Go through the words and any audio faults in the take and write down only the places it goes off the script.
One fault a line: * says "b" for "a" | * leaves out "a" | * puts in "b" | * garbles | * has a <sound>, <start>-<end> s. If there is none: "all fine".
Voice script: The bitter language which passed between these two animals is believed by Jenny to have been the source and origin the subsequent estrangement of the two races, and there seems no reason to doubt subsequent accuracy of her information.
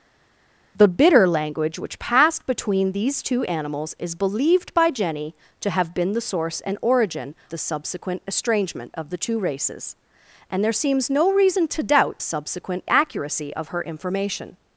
all fine